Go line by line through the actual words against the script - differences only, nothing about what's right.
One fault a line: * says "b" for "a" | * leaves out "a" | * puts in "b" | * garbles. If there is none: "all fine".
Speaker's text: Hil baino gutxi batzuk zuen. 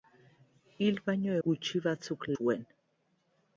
all fine